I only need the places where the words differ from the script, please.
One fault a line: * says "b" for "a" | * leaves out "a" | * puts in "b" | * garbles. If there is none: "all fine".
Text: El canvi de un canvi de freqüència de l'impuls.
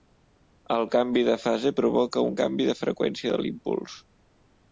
* puts in "fase provoca"